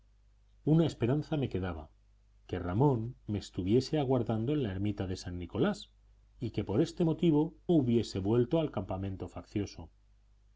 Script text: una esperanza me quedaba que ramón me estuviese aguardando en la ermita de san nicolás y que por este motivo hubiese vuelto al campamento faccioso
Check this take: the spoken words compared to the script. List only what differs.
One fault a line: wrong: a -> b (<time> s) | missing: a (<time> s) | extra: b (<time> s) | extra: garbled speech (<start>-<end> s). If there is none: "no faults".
no faults